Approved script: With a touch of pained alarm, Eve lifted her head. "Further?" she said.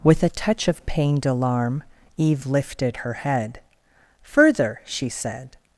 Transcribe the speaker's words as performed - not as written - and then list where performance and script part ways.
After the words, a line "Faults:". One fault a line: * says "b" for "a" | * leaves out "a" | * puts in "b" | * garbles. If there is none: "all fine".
With a touch of pained alarm, Eve lifted her head. "Further?" she said.
Faults:
all fine